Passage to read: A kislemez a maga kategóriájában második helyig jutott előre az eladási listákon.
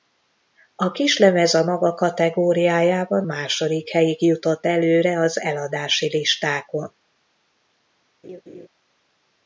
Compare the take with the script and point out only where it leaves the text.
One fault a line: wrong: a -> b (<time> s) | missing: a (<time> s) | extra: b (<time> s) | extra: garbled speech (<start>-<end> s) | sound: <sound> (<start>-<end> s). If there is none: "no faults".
sound: laugh (8.2-8.7 s)